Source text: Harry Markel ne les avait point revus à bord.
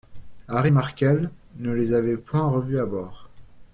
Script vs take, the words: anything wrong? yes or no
no